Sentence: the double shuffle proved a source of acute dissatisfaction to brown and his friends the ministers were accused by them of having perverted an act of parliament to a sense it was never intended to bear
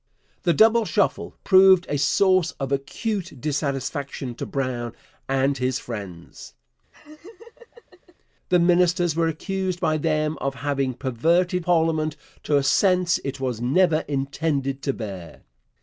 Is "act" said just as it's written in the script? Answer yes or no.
no